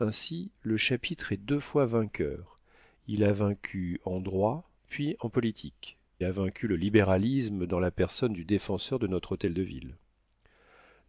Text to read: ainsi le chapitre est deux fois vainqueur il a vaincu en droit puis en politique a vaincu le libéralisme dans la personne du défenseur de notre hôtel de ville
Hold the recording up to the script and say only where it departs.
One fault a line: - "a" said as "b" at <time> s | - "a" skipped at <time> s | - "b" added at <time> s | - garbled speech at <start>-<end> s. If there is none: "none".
none